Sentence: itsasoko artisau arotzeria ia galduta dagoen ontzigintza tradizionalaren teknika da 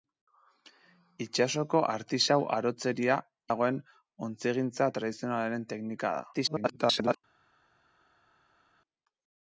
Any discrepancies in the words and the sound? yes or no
yes